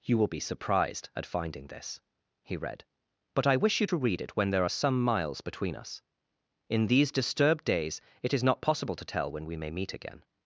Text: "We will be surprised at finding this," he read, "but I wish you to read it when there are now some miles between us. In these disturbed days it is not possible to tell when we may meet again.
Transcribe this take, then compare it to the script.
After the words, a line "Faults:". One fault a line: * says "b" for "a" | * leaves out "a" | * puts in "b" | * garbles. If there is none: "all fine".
"You will be surprised at finding this," he read, "but I wish you to read it when there are some miles between us. In these disturbed days it is not possible to tell when we may meet again.
Faults:
* says "You" for "We"
* leaves out "now"